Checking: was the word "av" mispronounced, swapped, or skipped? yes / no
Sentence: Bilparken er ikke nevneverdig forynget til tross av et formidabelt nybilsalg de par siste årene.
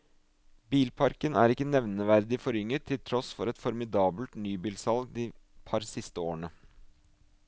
yes